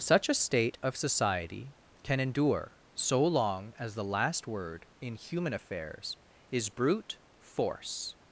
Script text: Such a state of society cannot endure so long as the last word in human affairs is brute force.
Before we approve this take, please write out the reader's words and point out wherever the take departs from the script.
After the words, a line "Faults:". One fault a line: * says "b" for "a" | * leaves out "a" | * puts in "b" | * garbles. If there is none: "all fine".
Such a state of society can endure so long as the last word in human affairs is brute force.
Faults:
* says "can" for "cannot"